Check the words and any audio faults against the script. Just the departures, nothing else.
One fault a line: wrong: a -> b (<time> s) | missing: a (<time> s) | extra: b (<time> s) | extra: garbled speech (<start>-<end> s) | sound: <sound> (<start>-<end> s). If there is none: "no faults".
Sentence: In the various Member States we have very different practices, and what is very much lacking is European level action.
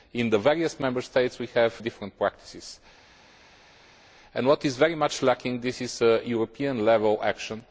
missing: very (1.7 s)